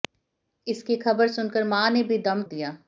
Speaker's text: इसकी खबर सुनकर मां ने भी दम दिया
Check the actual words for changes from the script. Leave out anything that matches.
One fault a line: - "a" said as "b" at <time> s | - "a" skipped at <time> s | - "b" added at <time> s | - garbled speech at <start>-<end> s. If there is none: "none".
none